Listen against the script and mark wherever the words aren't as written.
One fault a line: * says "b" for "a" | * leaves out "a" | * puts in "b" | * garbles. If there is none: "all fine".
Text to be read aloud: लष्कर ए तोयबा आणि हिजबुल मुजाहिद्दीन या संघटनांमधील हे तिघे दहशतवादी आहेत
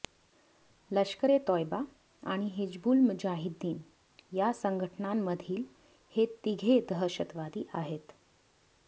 all fine